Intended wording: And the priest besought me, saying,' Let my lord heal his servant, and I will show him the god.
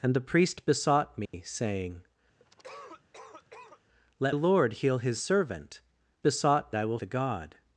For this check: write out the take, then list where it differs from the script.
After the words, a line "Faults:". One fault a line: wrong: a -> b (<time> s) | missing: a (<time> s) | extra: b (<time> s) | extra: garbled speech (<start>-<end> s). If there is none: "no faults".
And the priest besought me, saying,' Let lord heal his servant, besought I will the god.
Faults:
missing: my (4.3 s)
wrong: and -> besought (6.2 s)
missing: show him (7.0 s)